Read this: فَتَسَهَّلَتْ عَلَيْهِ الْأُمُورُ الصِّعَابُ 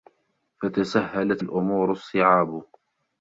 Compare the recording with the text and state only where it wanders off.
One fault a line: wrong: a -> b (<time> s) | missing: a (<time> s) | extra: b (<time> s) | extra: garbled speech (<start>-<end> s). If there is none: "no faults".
missing: عَلَيْهِ (1.4 s)